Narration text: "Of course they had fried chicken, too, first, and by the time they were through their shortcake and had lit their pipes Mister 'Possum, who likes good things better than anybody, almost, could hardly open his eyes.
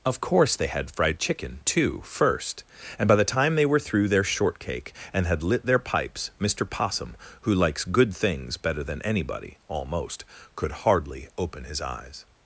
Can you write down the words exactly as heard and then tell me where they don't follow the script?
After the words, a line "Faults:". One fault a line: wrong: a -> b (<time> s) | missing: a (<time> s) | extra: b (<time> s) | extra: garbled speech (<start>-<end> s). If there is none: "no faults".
"Of course they had fried chicken, too, first, and by the time they were through their shortcake and had lit their pipes Mister 'Possum, who likes good things better than anybody, almost, could hardly open his eyes.
Faults:
no faults